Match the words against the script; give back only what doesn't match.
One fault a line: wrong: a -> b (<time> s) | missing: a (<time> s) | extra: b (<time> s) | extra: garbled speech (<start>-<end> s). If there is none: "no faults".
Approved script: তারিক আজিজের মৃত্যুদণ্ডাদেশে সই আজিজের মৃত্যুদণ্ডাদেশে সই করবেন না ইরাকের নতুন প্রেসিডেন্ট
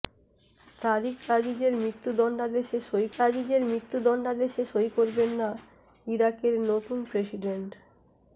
no faults